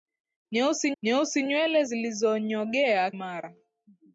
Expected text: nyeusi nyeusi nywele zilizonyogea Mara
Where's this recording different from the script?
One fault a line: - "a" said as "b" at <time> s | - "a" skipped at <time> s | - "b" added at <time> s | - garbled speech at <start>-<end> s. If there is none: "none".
none